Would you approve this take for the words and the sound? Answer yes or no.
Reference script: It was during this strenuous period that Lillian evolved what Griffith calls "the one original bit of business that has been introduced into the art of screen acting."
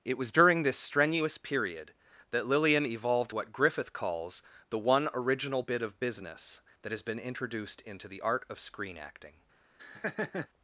no